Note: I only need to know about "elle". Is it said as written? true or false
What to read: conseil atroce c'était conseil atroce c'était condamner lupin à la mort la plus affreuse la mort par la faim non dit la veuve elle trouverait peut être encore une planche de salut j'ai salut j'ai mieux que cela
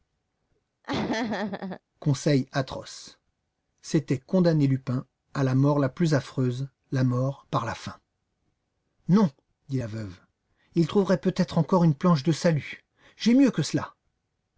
false